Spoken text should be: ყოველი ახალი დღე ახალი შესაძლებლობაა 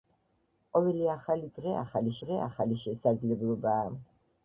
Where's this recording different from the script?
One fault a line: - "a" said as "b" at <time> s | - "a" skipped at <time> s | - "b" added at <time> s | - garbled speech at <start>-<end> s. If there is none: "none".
- "დღე ახალი" added at 2.2 s